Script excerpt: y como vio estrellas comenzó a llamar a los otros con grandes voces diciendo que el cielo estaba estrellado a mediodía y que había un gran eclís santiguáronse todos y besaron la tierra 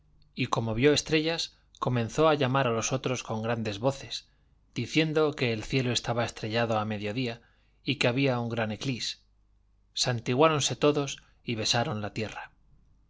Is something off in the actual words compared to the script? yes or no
no